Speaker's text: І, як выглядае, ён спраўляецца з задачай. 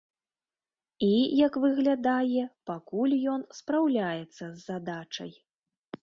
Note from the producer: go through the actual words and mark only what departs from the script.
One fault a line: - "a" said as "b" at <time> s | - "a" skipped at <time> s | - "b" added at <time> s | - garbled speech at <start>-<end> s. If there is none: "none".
- "пакуль" added at 2.7 s